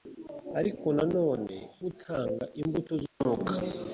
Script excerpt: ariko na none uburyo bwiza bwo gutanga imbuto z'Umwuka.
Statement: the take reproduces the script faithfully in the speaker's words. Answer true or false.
false